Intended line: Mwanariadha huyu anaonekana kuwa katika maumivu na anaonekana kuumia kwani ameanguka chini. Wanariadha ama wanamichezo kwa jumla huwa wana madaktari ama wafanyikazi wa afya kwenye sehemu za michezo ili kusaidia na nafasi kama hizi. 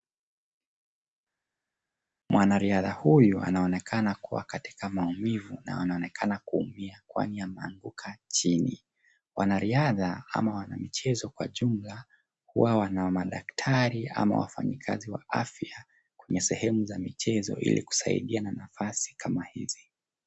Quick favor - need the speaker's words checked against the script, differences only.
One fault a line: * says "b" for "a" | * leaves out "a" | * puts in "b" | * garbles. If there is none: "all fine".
all fine